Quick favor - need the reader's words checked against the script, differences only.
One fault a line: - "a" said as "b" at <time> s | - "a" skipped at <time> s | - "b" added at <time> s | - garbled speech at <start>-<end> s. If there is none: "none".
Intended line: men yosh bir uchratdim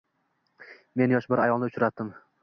- "ayolni" added at 1.4 s